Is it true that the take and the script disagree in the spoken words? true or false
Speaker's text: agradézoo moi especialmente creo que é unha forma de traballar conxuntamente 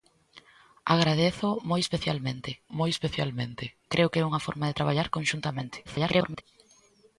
true